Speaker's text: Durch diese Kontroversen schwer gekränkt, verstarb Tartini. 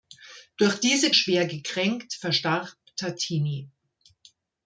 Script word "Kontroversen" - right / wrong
wrong